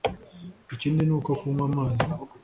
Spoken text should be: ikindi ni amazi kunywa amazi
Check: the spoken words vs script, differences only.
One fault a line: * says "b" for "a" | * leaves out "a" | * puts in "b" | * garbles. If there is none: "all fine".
* says "uko" for "amazi"